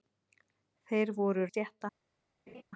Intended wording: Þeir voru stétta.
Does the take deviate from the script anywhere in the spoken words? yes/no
no